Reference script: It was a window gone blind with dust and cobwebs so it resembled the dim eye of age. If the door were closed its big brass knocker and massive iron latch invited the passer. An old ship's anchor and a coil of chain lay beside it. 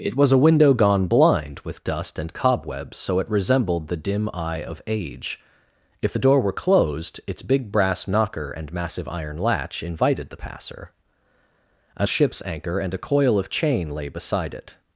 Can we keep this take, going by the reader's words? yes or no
no